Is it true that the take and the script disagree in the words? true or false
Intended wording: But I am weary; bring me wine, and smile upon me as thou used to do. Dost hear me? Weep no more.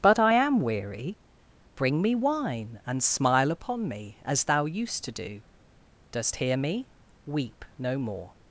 false